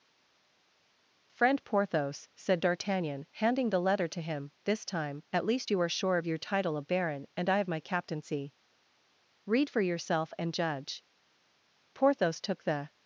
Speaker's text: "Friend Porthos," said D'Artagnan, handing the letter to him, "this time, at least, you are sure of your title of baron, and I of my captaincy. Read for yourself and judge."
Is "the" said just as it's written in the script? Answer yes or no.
yes